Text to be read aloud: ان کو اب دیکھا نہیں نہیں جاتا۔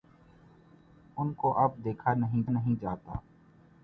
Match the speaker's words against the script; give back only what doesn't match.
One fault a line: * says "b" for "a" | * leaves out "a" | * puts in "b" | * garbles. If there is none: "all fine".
all fine